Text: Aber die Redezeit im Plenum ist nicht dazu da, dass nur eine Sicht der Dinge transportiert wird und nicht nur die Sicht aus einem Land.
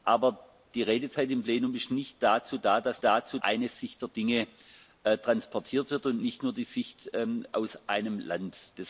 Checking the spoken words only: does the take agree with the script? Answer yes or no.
no